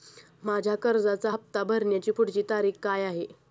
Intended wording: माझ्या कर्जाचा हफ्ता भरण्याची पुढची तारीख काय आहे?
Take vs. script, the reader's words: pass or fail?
pass